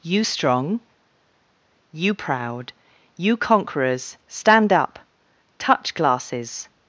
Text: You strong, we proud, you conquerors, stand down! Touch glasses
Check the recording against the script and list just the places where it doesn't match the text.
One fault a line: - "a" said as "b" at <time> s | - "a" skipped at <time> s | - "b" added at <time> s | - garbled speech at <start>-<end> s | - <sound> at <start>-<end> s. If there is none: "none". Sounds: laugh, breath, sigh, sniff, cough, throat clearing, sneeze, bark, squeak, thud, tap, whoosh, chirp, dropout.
- "we" said as "you" at 1.9 s
- "down" said as "up" at 4.7 s